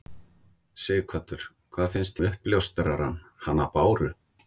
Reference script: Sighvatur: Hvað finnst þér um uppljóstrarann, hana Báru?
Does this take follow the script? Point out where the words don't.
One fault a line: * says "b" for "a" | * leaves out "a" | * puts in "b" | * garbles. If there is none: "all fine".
* leaves out "þér"